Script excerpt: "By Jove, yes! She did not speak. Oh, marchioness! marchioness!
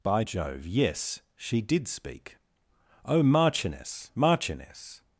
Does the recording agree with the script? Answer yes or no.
no